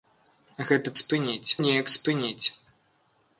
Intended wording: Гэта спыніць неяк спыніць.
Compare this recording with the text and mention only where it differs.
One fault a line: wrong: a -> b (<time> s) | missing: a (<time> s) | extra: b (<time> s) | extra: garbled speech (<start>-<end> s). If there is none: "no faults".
no faults